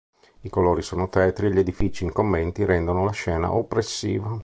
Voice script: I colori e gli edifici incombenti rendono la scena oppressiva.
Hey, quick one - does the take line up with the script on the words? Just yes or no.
no